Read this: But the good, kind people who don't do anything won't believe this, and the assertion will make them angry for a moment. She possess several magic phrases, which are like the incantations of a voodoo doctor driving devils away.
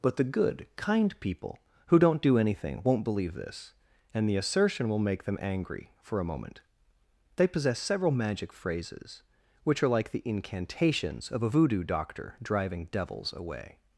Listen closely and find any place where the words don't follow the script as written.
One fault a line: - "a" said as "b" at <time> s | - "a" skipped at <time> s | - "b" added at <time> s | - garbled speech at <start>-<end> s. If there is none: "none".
- "She" said as "They" at 7.3 s